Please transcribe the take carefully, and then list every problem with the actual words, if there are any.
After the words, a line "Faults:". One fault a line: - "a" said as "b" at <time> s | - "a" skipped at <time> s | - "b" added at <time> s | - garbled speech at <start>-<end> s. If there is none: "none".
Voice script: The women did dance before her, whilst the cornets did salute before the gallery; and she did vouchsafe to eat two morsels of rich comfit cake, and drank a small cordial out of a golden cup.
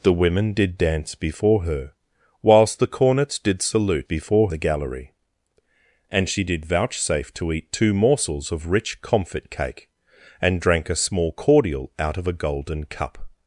The women did dance before her, whilst the cornets did salute before the gallery; and she did vouchsafe to eat two morsels of rich comfit cake, and drank a small cordial out of a golden cup.
Faults:
none